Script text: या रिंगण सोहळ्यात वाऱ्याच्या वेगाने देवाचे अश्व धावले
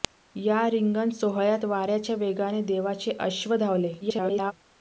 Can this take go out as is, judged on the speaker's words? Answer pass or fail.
fail